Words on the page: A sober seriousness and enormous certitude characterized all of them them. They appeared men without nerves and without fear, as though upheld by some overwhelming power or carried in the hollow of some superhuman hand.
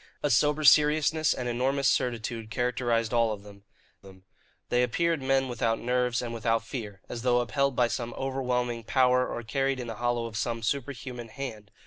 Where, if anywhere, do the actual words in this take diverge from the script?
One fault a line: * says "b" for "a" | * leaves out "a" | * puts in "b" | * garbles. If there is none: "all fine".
all fine